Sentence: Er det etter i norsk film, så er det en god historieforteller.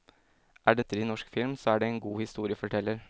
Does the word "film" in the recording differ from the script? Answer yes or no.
no